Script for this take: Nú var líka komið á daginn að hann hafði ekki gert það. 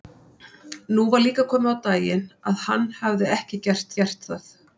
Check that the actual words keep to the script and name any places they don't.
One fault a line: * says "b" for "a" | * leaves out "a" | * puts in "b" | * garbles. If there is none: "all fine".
* puts in "gert"